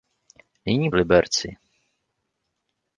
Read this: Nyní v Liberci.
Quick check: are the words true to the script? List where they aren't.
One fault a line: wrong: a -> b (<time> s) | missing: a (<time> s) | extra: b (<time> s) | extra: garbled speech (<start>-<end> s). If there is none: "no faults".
no faults